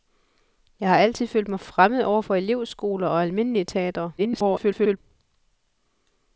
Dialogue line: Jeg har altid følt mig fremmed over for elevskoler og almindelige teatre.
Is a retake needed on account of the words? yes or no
yes